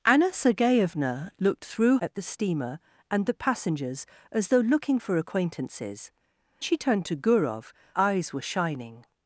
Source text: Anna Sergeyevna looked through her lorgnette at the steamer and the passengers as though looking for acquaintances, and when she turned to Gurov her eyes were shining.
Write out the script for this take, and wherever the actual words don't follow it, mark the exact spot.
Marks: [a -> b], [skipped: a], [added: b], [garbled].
Anna Sergeyevna looked through [skipped: her lorgnette] at the steamer and the passengers as though looking for acquaintances, [skipped: and when] she turned to Gurov [skipped: her] eyes were shining.